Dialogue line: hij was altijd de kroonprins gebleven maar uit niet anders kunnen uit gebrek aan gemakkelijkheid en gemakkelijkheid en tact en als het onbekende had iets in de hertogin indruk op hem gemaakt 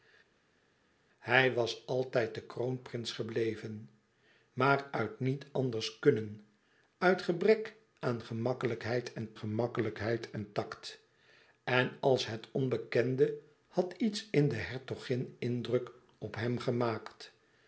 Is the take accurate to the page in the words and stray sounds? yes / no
yes